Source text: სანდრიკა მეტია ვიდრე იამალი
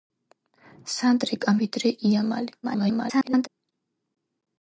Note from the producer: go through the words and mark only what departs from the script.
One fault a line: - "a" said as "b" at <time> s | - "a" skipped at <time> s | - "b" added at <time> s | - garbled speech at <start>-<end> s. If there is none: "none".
- "მეტია" skipped at 1.5 s
- garbled speech at 2.6-3.5 s